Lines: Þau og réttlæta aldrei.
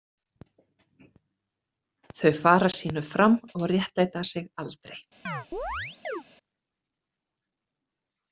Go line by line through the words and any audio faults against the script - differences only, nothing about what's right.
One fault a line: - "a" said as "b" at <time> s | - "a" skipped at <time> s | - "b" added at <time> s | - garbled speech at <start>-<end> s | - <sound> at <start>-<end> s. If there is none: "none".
- "fara sínu fram" added at 2.4 s
- "sig" added at 4.3 s
- chirp at 5.3-6.2 s